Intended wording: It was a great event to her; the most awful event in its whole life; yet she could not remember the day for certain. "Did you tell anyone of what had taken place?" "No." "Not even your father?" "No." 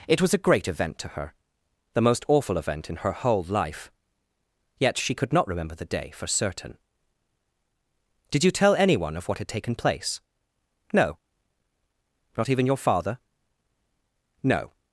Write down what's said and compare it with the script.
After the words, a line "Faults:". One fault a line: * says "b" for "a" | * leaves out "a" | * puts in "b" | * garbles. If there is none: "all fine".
It was a great event to her; the most awful event in her whole life; yet she could not remember the day for certain. "Did you tell anyone of what had taken place?" "No." "Not even your father?" "No."
Faults:
* says "her" for "its"